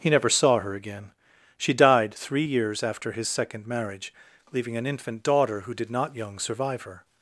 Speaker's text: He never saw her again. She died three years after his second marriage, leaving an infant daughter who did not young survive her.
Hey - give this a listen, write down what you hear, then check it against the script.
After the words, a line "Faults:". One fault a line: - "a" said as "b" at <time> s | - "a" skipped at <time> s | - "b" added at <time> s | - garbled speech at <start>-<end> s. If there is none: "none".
He never saw her again. She died three years after his second marriage, leaving an infant daughter who did not young survive her.
Faults:
none